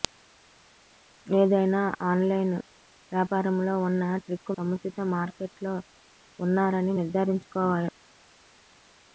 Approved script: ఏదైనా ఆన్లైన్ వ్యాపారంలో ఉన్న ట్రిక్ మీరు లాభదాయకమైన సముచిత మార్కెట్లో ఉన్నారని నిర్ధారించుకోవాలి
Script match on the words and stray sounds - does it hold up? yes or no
no